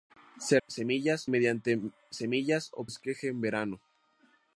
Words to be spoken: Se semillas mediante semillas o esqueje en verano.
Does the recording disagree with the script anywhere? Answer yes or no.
no